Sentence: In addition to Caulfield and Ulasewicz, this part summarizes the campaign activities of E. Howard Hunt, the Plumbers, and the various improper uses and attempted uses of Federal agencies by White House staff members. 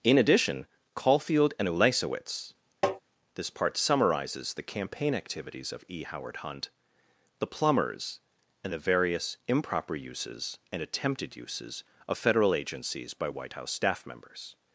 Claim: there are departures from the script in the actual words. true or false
true